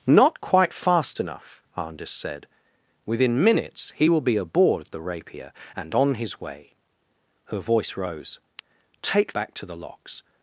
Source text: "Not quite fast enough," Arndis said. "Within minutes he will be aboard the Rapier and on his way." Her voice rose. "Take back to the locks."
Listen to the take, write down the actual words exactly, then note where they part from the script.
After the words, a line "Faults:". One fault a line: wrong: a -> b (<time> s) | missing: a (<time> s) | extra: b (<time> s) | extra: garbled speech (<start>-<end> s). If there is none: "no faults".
"Not quite fast enough," Arndis said. "Within minutes he will be aboard the Rapier and on his way." Her voice rose. "Take back to the locks."
Faults:
no faults